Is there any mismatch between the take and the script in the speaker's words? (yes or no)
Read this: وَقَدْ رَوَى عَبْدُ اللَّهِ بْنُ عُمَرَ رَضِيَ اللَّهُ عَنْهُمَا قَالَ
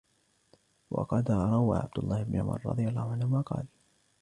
no